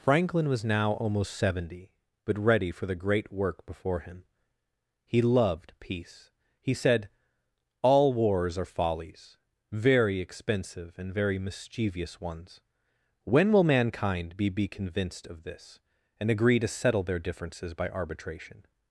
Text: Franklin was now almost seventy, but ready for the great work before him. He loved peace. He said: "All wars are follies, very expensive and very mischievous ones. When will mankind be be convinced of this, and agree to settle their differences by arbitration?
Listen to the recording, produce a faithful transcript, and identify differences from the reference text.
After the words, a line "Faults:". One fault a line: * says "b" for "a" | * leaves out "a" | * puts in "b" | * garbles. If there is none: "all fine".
Franklin was now almost seventy, but ready for the great work before him. He loved peace. He said: "All wars are follies, very expensive and very mischievous ones. When will mankind be be convinced of this, and agree to settle their differences by arbitration?
Faults:
all fine